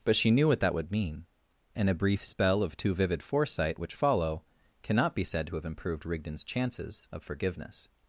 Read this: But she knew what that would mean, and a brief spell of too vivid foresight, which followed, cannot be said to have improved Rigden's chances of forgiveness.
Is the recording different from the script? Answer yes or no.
yes